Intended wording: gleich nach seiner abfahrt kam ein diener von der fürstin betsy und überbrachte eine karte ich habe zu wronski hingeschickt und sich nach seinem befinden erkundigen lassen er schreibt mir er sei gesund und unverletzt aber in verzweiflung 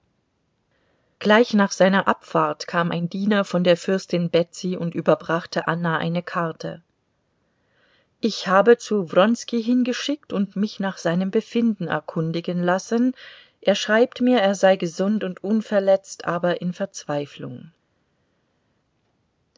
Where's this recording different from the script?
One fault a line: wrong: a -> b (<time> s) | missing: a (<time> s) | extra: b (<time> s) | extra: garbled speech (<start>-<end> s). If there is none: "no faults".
extra: anna (5.7 s)
wrong: sich -> mich (10.6 s)